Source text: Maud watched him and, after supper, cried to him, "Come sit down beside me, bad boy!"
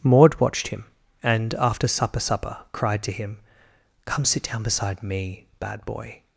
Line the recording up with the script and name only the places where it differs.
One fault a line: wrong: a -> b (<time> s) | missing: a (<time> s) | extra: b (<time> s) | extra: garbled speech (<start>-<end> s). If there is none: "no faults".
extra: supper (2.2 s)